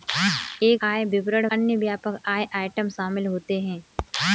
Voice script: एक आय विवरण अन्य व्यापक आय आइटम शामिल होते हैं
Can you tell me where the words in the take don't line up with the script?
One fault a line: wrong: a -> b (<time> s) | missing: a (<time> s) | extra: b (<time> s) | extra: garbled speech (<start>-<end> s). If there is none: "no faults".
no faults